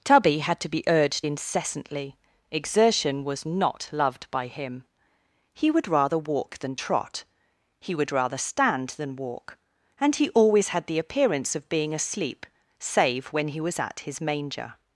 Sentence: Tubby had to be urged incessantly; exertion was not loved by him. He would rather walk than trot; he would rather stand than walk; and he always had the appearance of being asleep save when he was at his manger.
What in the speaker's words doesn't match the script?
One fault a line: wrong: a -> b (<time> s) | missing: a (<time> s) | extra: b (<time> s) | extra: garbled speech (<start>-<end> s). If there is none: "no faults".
no faults